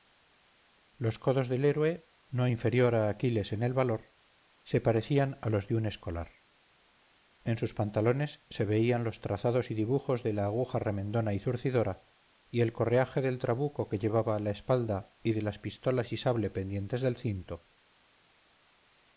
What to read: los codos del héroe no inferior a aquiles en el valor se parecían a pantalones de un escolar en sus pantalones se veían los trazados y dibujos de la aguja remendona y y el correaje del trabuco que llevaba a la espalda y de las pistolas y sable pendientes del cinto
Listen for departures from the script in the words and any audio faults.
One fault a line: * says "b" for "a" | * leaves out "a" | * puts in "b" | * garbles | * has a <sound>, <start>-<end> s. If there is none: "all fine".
* says "los" for "pantalones"
* puts in "zurcidora"